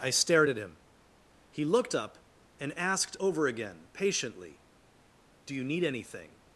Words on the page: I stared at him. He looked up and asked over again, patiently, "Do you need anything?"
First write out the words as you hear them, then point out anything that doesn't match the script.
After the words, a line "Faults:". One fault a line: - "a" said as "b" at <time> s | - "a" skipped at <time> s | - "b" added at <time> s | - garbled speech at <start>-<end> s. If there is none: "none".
I stared at him. He looked up and asked over again, patiently, "Do you need anything?"
Faults:
none